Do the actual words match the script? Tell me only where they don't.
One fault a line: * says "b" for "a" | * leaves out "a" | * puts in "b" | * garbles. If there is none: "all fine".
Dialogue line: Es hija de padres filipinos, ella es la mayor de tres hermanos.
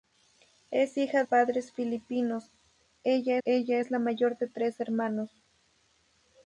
* leaves out "de"
* puts in "ella"